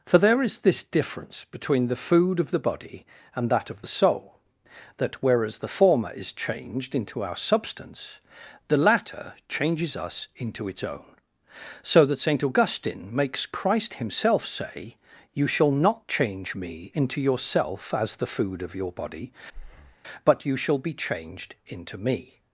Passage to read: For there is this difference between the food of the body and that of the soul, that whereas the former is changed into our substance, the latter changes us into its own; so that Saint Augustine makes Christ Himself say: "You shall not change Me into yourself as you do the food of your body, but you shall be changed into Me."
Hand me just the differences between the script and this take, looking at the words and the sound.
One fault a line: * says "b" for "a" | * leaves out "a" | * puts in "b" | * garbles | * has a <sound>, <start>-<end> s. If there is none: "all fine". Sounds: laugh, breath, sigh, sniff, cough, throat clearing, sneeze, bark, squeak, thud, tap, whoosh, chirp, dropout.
* leaves out "you do"
* has a breath, 19.5-20.0 s